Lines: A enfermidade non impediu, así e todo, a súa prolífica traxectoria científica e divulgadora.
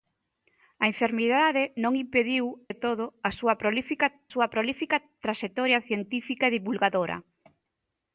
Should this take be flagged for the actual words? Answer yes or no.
yes